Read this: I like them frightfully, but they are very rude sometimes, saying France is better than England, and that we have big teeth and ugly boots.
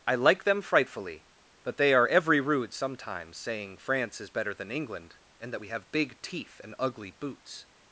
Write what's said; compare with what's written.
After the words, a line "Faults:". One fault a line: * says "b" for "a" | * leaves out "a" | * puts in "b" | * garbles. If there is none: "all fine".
I like them frightfully, but they are every rude sometimes, saying France is better than England, and that we have big teeth and ugly boots.
Faults:
* says "every" for "very"